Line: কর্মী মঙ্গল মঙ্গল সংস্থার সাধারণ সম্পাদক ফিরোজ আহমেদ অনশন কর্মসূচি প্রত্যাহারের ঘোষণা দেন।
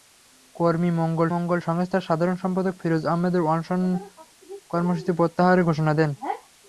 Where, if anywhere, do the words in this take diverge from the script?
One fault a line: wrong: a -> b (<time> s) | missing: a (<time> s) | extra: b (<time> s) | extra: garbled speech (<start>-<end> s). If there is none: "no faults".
no faults